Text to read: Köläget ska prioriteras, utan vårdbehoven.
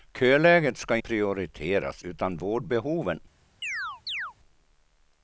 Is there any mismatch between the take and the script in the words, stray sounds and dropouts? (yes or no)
yes